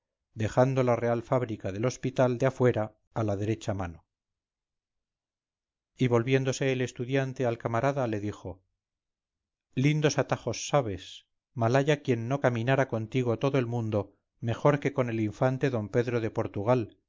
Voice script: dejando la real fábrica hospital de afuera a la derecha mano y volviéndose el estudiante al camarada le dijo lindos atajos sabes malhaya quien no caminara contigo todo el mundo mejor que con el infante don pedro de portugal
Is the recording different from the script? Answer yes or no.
yes